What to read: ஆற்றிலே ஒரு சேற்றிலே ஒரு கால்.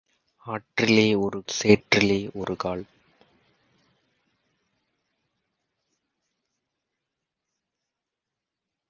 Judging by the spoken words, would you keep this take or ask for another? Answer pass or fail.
pass